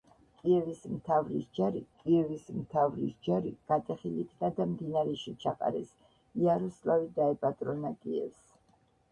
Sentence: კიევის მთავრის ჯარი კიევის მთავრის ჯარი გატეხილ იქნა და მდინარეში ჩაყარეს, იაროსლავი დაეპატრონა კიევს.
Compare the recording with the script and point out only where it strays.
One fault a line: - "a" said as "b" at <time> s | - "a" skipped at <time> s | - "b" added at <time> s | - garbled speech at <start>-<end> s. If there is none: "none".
none